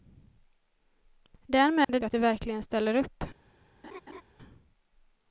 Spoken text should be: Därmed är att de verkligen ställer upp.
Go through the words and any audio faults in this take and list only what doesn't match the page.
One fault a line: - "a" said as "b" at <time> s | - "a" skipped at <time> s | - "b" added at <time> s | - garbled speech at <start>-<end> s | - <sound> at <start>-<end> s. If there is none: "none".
- dropout at 1.8-1.9 s
- laugh at 3.8-4.2 s